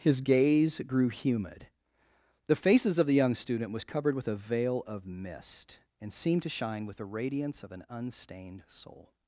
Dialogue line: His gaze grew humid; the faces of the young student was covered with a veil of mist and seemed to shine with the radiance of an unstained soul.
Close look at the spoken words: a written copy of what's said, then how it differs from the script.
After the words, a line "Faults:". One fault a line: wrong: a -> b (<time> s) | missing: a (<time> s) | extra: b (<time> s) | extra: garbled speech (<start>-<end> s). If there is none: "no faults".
His gaze grew humid; the faces of the young student was covered with a veil of mist and seemed to shine with the radiance of an unstained soul.
Faults:
no faults